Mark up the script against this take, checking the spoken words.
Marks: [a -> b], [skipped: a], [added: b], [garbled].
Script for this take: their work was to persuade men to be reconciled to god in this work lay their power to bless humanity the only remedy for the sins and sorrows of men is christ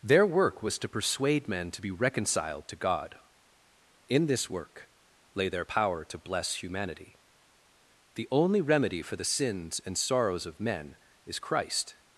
their work was to persuade men to be reconciled to god in this work lay their power to bless humanity the only remedy for the sins and sorrows of men is christ